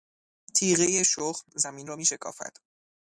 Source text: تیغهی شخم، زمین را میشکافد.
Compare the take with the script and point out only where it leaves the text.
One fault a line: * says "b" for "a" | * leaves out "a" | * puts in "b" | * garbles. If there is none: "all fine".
all fine